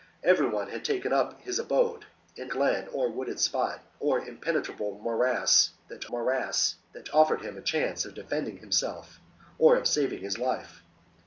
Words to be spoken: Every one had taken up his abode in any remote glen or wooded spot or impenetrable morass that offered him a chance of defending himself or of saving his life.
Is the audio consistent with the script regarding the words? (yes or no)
no